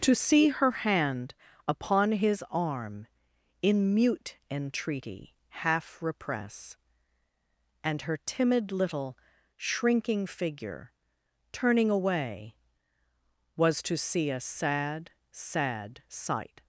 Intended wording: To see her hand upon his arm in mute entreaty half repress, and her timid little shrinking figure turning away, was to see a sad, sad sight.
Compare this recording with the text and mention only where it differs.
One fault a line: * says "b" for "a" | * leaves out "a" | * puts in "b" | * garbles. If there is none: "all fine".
all fine